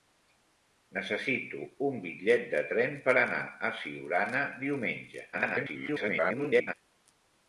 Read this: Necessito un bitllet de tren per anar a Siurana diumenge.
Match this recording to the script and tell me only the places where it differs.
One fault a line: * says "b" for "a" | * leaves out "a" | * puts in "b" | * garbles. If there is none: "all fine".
* garbles